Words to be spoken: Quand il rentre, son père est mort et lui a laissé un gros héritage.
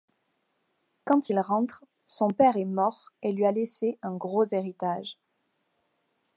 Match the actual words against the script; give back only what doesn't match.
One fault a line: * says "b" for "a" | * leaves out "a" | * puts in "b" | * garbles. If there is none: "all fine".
all fine